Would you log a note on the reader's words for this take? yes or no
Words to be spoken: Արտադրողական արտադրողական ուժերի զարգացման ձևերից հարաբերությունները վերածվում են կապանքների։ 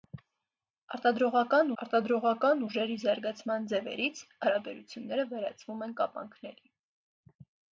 no